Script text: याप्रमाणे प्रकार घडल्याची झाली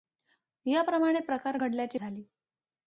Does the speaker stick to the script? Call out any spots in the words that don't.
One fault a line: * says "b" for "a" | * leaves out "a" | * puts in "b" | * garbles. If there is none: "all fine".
all fine